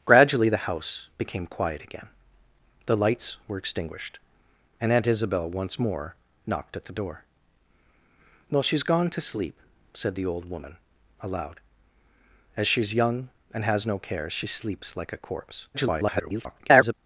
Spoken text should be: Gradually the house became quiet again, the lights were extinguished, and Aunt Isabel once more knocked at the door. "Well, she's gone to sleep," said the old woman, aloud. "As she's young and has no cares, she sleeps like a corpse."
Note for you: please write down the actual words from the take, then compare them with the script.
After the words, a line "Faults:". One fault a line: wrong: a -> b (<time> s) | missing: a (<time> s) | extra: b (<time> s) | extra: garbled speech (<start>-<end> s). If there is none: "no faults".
Gradually the house became quiet again, the lights were extinguished, and Aunt Isabel once more knocked at the door. "Well, she's gone to sleep," said the old woman, aloud. "As she's young and has no cares, she sleeps like a corpse." [garbled]
Faults:
extra: garbled speech (15.7-16.9 s)